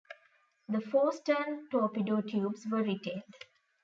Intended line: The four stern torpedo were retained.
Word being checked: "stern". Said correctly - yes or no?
yes